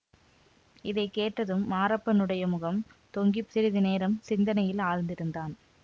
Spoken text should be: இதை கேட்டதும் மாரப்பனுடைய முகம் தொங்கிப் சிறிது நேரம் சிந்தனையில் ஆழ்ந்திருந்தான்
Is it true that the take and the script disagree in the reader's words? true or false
false